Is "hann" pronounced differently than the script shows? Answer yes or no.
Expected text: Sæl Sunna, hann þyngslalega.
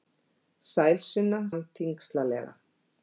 no